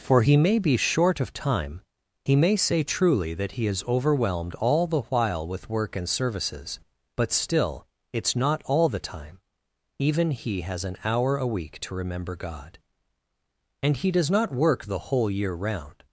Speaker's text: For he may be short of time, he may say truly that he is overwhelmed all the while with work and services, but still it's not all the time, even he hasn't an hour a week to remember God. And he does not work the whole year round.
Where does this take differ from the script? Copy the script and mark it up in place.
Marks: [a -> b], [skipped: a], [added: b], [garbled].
For he may be short of time, he may say truly that he is overwhelmed all the while with work and services, but still it's not all the time, even he [hasn't -> has] an hour a week to remember God. And he does not work the whole year round.